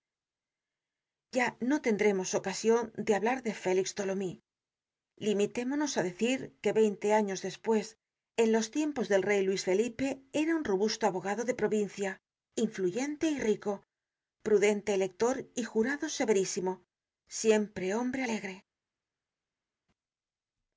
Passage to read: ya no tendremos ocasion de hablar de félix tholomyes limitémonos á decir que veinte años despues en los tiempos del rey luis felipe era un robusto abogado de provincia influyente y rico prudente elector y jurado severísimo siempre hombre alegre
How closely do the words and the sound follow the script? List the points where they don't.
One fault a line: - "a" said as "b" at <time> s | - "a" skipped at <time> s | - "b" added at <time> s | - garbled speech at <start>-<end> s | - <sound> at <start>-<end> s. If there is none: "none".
none